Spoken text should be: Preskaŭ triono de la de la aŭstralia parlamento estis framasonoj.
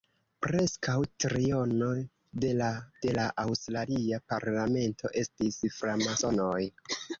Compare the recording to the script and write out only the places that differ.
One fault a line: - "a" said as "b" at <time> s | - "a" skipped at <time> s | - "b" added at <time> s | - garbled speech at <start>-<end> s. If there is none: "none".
none